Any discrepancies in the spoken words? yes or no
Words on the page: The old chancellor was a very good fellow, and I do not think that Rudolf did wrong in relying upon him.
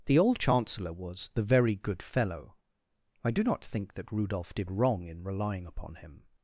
yes